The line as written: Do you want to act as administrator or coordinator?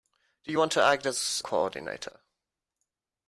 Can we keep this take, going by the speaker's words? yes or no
no